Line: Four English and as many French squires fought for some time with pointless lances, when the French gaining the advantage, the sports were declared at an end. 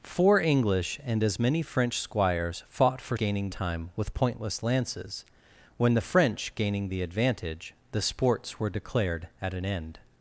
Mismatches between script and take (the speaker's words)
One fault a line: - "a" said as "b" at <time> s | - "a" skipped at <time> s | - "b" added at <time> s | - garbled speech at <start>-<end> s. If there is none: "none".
- "some" said as "gaining" at 3.2 s